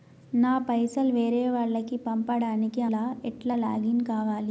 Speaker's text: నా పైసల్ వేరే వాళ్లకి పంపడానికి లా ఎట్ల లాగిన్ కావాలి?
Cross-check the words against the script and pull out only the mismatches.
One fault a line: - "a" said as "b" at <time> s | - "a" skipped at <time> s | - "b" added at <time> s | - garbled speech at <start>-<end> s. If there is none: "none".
none